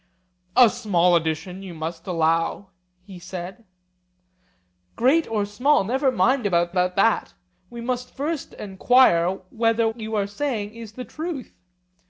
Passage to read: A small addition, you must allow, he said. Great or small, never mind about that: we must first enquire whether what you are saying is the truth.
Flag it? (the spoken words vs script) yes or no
yes